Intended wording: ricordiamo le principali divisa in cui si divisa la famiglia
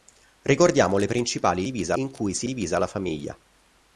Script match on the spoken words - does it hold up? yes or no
yes